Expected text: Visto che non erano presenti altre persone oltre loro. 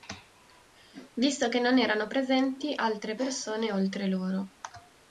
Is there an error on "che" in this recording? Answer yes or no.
no